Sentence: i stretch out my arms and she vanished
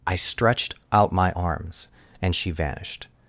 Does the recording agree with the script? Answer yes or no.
no